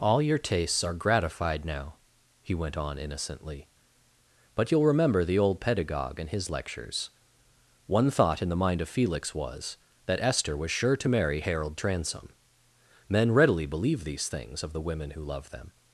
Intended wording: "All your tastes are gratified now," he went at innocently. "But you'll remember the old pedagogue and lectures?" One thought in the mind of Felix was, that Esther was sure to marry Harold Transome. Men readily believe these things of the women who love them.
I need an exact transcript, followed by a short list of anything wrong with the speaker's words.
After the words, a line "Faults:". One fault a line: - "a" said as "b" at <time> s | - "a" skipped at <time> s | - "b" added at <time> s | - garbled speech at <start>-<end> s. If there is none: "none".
"All your tastes are gratified now," he went on innocently. "But you'll remember the old pedagogue and his lectures?" One thought in the mind of Felix was, that Esther was sure to marry Harold Transome. Men readily believe these things of the women who love them.
Faults:
- "at" said as "on" at 2.8 s
- "his" added at 6.3 s